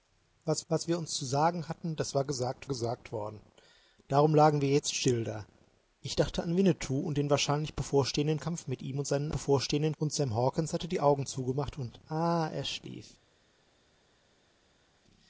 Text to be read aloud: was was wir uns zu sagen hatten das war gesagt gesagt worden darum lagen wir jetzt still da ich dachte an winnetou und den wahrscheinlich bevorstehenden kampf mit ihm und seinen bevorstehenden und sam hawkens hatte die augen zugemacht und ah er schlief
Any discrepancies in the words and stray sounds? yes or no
no